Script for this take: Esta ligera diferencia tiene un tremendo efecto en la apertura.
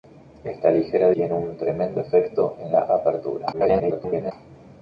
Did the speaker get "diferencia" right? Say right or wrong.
wrong